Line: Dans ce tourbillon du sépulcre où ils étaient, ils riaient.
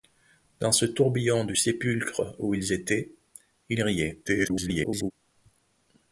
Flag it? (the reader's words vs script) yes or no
yes